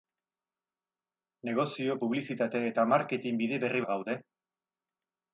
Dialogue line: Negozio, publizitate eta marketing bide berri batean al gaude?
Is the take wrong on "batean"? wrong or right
wrong